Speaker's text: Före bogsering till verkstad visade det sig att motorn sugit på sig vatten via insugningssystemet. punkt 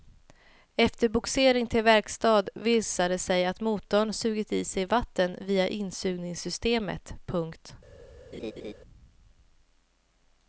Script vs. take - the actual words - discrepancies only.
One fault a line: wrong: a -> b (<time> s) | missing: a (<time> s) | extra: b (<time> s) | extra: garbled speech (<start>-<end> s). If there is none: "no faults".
wrong: Före -> Efter (0.8 s)
wrong: på -> i (4.5 s)